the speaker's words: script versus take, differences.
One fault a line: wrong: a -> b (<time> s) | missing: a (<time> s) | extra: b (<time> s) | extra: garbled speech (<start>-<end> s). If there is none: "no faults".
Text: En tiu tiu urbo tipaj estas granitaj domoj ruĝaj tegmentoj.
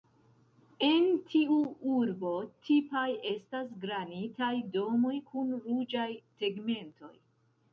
missing: tiu (1.6 s)
extra: kun (5.3 s)